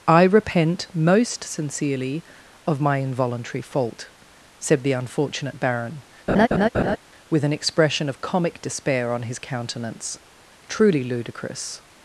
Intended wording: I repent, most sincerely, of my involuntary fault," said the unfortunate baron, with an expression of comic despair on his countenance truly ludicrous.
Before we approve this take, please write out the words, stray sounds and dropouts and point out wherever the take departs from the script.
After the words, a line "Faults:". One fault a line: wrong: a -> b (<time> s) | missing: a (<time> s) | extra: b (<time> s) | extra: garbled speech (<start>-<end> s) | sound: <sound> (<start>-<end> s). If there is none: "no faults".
I repent, most sincerely, of my involuntary fault," said the unfortunate baron, with an expression of comic despair on his countenance truly ludicrous.
Faults:
sound: laugh (6.3-7.0 s)